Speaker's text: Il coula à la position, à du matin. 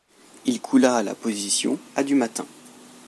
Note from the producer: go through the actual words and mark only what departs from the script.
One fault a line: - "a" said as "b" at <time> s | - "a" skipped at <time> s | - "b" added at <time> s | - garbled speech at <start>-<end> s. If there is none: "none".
none